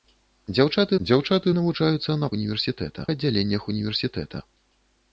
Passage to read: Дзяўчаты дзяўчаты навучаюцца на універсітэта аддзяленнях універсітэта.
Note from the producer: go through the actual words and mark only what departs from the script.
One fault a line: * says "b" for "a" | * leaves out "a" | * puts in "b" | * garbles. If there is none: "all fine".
all fine